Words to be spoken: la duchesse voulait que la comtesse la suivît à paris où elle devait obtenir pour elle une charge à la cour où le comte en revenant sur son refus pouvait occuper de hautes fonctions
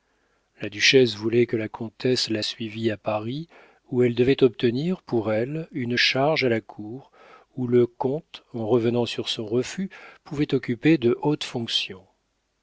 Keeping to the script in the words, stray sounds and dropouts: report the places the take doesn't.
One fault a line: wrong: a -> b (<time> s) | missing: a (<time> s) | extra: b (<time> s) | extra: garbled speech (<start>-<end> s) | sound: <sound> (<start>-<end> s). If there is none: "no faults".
no faults